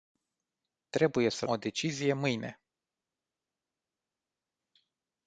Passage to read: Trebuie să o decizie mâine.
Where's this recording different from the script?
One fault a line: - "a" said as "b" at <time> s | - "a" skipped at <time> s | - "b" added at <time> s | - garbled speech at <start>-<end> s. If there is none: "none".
none